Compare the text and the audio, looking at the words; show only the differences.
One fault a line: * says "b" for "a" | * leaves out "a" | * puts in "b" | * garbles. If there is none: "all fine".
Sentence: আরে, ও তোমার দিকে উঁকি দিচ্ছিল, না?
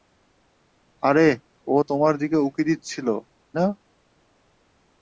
all fine